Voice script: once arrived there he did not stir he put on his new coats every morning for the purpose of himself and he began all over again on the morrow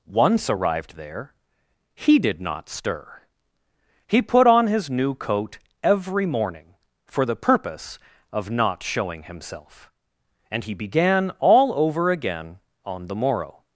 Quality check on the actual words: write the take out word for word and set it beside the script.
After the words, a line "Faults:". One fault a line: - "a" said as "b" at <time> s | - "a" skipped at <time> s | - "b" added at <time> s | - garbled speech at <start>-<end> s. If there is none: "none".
once arrived there he did not stir he put on his new coat every morning for the purpose of not showing himself and he began all over again on the morrow
Faults:
- "coats" said as "coat" at 5.2 s
- "not showing" added at 8.5 s